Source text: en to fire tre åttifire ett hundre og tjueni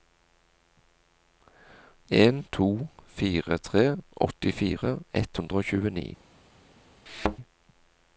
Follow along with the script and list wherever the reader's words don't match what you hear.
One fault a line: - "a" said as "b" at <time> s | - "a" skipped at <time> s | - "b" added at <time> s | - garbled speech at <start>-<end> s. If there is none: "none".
none